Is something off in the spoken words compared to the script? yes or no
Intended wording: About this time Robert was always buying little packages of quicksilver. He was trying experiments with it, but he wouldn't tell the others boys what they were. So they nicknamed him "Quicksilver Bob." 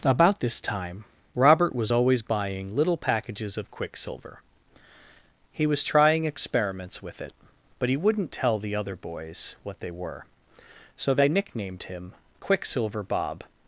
yes